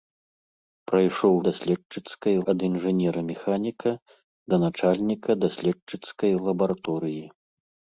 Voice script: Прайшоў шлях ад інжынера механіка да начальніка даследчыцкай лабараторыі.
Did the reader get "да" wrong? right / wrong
right